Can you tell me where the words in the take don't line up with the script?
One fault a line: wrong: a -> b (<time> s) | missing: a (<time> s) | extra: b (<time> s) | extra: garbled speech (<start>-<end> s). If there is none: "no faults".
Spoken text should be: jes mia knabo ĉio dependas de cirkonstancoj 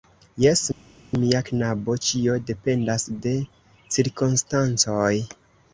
no faults